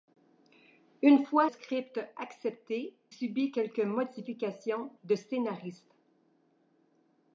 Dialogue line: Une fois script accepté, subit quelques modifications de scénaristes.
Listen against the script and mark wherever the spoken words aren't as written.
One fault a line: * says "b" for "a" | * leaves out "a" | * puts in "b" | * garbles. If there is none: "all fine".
all fine